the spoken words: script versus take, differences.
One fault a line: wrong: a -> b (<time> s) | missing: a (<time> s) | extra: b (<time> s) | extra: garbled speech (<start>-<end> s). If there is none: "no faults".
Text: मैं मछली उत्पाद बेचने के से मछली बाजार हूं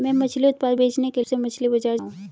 no faults